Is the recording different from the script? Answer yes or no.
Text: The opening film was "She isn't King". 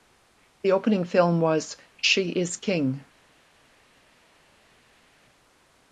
yes